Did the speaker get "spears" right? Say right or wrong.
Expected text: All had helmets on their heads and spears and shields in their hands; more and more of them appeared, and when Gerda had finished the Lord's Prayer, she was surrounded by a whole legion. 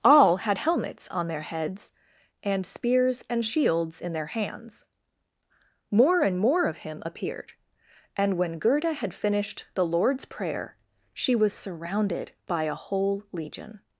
right